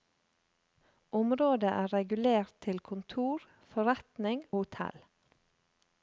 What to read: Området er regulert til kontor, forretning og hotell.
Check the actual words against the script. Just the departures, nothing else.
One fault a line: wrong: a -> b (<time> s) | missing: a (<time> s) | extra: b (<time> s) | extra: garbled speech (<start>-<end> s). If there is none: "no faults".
missing: og (4.4 s)